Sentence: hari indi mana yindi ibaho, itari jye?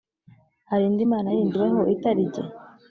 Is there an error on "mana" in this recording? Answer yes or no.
no